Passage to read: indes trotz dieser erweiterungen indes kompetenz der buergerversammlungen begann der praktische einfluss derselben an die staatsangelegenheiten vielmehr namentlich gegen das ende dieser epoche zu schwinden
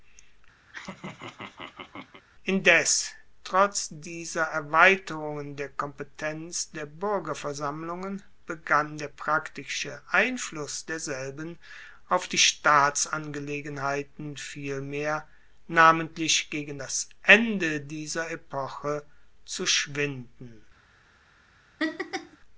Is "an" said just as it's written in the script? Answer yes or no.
no